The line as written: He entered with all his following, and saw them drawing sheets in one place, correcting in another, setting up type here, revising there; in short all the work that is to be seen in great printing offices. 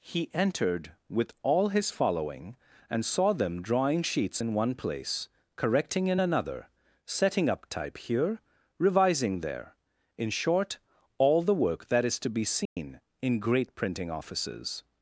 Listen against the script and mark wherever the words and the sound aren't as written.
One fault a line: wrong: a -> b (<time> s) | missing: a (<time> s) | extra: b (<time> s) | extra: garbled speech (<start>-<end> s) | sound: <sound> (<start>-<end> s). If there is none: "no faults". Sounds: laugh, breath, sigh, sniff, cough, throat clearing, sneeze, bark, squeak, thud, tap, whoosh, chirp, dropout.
sound: dropout (12.7-12.8 s)